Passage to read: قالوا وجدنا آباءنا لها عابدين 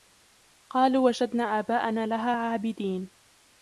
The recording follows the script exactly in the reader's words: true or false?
true